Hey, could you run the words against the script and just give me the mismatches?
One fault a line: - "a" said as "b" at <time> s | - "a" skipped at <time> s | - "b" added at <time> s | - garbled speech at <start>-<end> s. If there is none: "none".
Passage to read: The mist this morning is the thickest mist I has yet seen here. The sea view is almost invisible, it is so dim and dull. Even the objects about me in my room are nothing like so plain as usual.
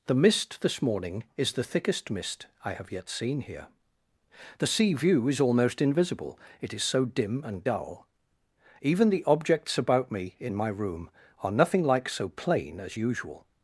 - "has" said as "have" at 2.7 s